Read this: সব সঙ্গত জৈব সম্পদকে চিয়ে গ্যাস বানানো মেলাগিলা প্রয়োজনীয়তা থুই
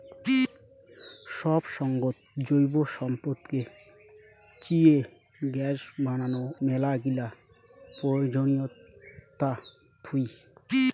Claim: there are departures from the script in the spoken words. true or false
false